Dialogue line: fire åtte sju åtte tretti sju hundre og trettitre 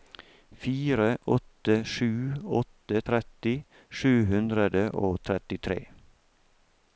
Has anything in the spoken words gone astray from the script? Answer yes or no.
no